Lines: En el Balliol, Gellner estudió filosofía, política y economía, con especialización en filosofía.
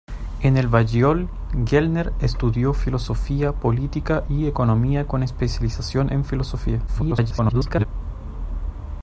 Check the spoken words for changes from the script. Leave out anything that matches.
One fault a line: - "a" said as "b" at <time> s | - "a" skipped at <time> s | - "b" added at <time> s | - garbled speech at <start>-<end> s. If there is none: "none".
- garbled speech at 6.9-7.9 s